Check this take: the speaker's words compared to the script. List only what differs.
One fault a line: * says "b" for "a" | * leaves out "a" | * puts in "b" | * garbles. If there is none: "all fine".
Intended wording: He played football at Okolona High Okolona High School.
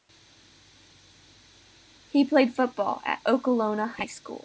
* leaves out "Okolona High"